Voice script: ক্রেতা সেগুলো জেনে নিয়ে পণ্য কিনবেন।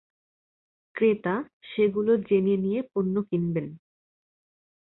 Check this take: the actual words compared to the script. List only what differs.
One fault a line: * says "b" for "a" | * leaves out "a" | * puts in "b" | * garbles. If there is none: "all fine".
all fine